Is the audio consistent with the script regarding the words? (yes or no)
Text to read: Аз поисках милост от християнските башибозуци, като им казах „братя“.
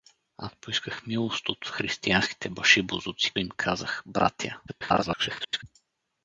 no